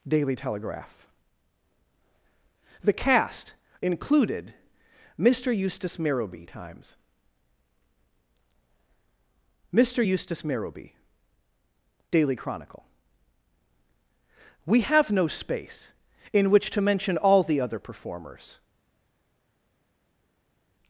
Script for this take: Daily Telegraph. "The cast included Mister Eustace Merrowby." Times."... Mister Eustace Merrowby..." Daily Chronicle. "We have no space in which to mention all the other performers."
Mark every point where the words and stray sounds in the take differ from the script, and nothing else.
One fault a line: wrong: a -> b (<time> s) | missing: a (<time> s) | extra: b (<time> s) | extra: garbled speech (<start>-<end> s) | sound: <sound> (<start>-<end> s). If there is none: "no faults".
no faults